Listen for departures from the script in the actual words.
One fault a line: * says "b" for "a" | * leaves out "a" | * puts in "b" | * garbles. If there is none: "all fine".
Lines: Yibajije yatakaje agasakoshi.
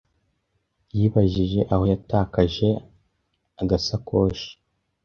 * puts in "aho"